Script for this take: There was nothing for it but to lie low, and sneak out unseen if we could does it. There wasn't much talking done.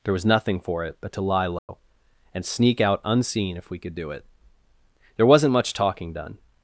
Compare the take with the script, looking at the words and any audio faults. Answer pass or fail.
fail